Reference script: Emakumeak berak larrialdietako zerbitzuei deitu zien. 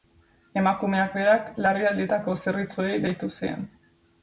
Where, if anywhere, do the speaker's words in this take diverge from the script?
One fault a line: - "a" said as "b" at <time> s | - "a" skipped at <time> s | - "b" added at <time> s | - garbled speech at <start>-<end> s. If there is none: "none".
none